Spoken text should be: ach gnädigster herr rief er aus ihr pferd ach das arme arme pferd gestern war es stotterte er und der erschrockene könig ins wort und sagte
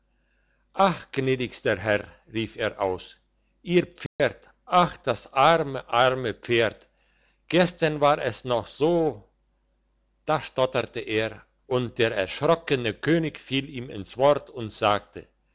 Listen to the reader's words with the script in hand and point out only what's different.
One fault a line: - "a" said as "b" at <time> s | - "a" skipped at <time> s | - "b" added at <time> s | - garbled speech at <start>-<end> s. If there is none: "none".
- "noch so da" added at 8.5 s
- "fiel ihm" added at 13.4 s